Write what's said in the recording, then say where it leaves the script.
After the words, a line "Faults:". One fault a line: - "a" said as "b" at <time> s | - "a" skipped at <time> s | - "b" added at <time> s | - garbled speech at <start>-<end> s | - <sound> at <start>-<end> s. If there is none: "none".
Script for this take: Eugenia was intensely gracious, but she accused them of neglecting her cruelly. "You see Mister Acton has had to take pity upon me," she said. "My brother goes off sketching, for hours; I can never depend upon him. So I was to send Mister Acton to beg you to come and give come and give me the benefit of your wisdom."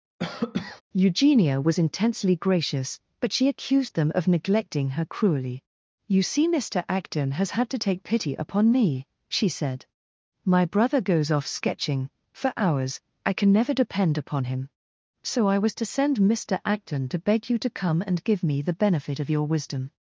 Eugenia was intensely gracious, but she accused them of neglecting her cruelly. "You see Mister Acton has had to take pity upon me," she said. "My brother goes off sketching, for hours; I can never depend upon him. So I was to send Mister Acton to beg you to come and give me the benefit of your wisdom."
Faults:
- cough at 0.2-0.8 s
- "come and give" skipped at 18.4 s